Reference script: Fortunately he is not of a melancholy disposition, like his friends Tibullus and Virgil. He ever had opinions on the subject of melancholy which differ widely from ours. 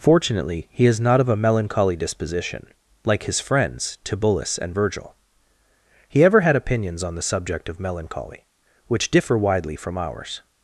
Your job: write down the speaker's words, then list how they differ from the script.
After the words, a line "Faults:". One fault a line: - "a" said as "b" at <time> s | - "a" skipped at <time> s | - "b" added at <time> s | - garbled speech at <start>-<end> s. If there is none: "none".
Fortunately he is not of a melancholy disposition, like his friends Tibullus and Virgil. He ever had opinions on the subject of melancholy which differ widely from ours.
Faults:
none